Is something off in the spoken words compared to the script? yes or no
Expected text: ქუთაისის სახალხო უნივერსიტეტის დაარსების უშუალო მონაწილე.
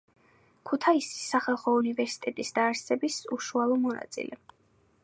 no